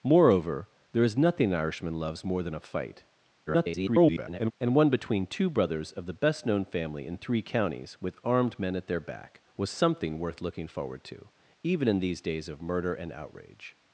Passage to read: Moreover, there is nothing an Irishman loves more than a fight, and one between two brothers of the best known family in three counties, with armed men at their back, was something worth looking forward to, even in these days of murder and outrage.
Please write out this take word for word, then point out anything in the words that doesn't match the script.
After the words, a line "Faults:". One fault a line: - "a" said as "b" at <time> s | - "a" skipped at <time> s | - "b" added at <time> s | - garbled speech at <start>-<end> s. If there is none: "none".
Moreover, there is nothing an Irishman loves more than a fight, [garbled] and one between two brothers of the best known family in three counties, with armed men at their back, was something worth looking forward to, even in these days of murder and outrage.
Faults:
- garbled speech at 3.5-4.5 s